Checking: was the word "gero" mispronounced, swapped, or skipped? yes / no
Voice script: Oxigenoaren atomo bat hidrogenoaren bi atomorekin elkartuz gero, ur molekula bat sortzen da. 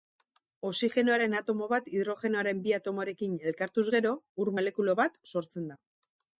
no